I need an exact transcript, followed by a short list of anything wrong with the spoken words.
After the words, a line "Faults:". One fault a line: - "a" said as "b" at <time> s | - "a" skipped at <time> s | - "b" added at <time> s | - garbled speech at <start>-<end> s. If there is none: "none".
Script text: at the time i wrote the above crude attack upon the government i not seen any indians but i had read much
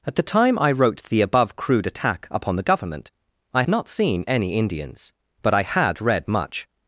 at the time i wrote the above crude attack upon the government i not seen any indians but i had read much
Faults:
none